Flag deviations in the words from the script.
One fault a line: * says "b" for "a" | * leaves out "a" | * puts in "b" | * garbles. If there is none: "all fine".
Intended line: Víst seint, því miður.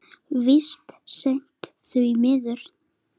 all fine